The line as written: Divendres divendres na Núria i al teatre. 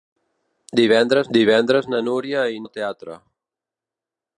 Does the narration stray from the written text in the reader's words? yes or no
no